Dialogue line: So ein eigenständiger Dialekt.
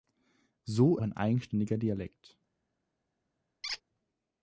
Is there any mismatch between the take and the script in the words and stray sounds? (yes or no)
yes